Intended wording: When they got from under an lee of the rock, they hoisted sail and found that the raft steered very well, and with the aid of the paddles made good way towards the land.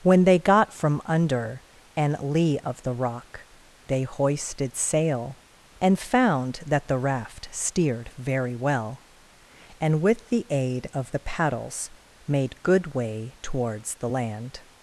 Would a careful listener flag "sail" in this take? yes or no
no